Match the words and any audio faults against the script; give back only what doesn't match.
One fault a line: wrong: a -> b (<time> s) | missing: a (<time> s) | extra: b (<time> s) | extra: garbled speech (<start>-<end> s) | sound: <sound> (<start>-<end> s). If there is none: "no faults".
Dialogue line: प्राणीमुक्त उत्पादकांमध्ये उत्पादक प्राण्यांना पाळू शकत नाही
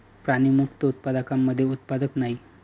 missing: प्राण्यांना पाळू शकत (2.1 s)